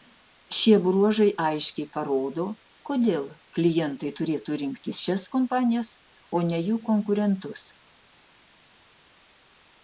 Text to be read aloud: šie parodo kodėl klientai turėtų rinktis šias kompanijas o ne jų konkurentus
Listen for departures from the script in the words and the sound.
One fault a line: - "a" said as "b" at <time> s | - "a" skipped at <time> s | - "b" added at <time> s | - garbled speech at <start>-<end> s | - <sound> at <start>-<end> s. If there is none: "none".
- "bruožai aiškiai" added at 0.8 s